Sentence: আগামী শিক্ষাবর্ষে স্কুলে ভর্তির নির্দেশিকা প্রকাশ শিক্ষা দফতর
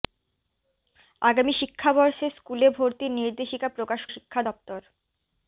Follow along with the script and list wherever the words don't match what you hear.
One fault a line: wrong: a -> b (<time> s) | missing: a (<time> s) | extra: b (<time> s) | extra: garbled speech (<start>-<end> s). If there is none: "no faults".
no faults